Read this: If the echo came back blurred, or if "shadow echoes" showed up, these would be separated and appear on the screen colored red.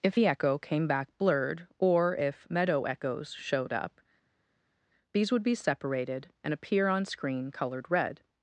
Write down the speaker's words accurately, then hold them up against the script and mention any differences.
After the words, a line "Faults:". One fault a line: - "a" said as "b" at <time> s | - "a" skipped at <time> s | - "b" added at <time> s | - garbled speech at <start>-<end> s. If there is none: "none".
If the echo came back blurred, or if "meadow echoes" showed up, these would be separated and appear on screen colored red.
Faults:
- "shadow" said as "meadow" at 2.5 s
- "the" skipped at 7.1 s